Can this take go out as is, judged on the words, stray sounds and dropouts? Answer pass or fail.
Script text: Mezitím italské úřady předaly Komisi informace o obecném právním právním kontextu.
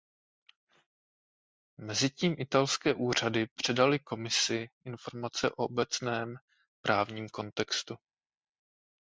fail